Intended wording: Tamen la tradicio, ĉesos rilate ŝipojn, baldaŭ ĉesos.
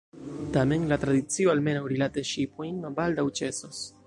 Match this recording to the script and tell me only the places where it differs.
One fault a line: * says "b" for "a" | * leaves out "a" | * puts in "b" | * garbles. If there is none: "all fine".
* says "almenaŭ" for "ĉesos"